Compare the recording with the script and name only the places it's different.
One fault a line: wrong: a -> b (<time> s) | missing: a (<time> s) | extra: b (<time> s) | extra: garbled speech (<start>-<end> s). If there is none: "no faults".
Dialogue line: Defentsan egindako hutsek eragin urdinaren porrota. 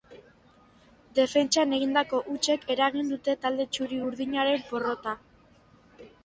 extra: dute talde txuri (3.1 s)